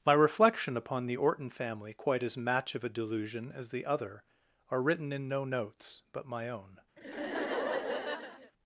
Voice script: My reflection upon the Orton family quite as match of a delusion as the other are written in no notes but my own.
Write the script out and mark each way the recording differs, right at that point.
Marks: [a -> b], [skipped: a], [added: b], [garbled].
My reflection upon the Orton family quite as match of a delusion as the other are written in no notes but my own.